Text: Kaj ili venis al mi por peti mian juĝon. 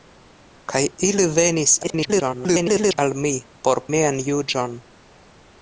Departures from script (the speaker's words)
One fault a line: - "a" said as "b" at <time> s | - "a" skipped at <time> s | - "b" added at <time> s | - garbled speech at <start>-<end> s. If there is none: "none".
- garbled speech at 1.8-3.0 s
- "peti" skipped at 3.8 s